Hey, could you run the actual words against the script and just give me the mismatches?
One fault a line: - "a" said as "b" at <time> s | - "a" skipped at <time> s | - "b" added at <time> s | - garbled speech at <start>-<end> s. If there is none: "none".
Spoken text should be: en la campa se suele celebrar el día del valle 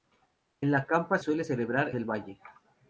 - "se" skipped at 1.2 s
- "el día" skipped at 1.9 s